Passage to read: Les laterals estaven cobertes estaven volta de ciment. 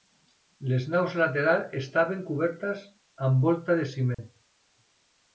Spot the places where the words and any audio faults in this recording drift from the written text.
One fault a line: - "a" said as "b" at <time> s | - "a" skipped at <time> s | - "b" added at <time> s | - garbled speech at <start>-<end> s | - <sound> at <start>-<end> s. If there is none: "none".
- "naus" added at 0.9 s
- "estaven" said as "amb" at 3.3 s
- dropout at 4.1-4.2 s